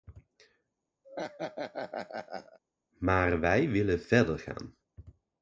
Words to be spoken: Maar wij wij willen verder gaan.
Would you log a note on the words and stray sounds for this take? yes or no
yes